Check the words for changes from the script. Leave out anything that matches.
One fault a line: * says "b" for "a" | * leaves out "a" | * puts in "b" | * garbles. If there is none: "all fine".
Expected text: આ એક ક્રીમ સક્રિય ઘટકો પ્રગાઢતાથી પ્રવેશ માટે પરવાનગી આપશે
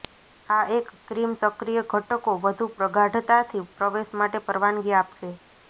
* puts in "વધુ"